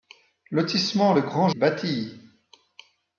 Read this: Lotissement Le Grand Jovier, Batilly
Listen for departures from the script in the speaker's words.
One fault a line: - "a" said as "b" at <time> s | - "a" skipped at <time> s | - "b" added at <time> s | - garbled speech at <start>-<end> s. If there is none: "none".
- "Jovier" skipped at 1.5 s